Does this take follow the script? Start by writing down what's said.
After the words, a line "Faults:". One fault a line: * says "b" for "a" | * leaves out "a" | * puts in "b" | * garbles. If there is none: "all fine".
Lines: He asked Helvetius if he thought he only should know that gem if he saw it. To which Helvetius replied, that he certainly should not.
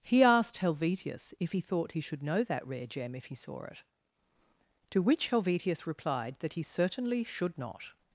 He asked Helvetius if he thought he should know that rare gem if he saw it. To which Helvetius replied, that he certainly should not.
Faults:
* leaves out "only"
* puts in "rare"